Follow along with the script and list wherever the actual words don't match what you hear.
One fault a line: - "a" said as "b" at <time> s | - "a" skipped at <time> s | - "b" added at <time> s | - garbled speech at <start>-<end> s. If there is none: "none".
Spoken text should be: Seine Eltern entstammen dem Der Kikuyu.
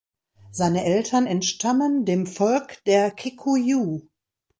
- "Volk" added at 2.3 s